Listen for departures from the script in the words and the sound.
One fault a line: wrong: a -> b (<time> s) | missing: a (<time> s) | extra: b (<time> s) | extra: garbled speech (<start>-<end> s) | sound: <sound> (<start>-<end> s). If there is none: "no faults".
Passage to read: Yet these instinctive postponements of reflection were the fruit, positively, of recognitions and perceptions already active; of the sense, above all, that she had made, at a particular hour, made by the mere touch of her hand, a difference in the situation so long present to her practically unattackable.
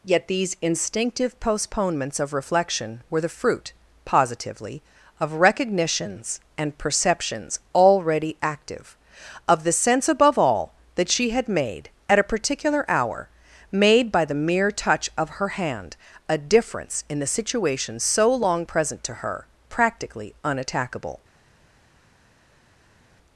no faults